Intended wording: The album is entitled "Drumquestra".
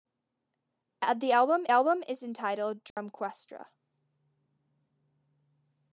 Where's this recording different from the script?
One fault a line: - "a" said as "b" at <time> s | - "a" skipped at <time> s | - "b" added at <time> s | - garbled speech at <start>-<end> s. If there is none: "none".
- "album" added at 1.7 s